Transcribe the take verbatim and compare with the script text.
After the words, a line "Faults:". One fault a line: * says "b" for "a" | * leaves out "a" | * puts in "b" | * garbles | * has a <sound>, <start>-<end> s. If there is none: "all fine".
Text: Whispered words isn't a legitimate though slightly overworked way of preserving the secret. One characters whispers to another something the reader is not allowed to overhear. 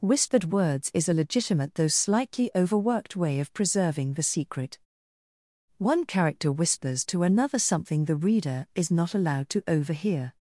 Whispered words is a legitimate though slightly overworked way of preserving the secret. One character whispers to another something the reader is not allowed to overhear.
Faults:
* says "is" for "isn't"
* says "character" for "characters"